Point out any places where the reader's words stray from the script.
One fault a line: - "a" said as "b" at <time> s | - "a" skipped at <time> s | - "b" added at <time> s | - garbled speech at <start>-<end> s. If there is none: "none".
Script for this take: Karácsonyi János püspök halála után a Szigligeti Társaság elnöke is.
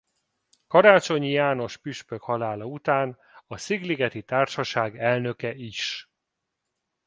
none